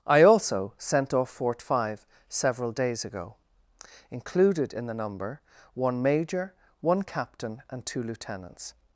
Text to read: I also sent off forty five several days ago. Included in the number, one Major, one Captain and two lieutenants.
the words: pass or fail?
fail